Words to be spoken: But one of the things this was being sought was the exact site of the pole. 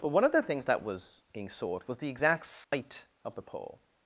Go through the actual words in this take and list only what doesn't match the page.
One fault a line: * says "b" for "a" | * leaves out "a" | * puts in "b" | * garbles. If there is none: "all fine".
* says "that" for "this"